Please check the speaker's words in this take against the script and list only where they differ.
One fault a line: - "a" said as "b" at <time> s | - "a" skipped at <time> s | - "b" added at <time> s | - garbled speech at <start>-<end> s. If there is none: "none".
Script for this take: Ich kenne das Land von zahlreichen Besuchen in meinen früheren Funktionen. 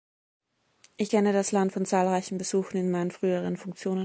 none